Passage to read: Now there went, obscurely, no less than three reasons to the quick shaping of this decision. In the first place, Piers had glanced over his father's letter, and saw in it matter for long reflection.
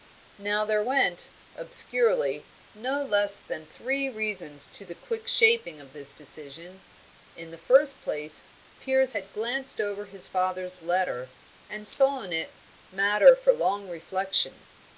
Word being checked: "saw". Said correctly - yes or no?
yes